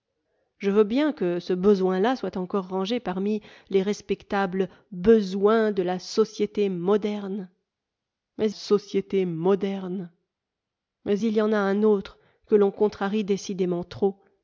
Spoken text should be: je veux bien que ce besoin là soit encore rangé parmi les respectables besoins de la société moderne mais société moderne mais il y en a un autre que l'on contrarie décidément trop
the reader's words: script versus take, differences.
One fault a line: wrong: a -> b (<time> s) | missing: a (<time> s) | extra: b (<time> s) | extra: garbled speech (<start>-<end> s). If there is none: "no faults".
no faults